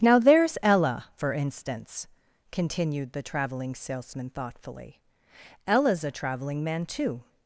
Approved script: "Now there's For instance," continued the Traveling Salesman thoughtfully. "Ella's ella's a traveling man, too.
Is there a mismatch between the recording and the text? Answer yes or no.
yes